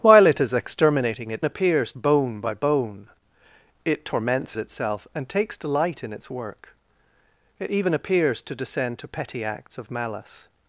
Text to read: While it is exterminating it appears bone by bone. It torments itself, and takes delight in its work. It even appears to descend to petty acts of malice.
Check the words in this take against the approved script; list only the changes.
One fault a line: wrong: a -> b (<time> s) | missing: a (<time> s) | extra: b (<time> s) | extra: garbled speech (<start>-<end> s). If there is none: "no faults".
no faults